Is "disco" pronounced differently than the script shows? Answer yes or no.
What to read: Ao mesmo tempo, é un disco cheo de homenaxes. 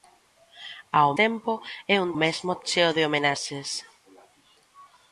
yes